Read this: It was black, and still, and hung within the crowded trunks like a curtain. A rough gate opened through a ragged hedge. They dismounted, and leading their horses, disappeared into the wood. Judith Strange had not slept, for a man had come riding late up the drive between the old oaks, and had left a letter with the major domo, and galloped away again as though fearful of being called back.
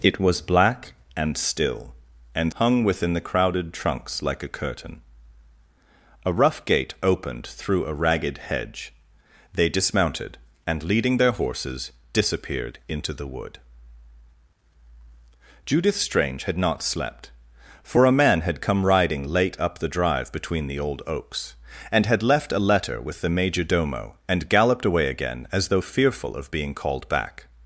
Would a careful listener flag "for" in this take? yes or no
no